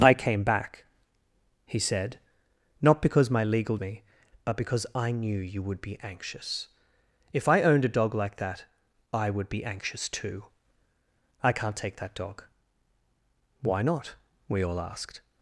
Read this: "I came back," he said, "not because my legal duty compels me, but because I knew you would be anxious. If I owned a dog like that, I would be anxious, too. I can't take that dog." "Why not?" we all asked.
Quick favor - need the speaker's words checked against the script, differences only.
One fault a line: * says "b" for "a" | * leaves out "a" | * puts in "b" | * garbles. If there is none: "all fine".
* leaves out "duty compels"